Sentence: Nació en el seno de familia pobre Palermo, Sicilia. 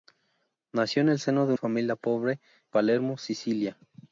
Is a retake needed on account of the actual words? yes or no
no